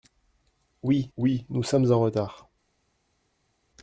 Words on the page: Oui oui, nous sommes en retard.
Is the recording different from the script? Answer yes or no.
no